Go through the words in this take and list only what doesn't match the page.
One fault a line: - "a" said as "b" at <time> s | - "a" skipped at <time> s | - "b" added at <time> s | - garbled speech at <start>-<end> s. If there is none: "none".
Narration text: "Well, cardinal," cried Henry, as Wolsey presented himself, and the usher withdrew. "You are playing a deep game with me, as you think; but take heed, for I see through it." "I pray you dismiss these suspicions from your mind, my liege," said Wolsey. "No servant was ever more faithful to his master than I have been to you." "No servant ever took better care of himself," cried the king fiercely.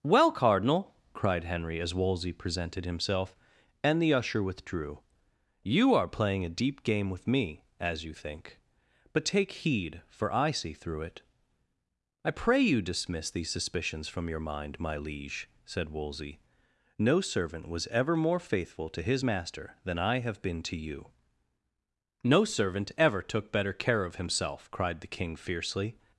none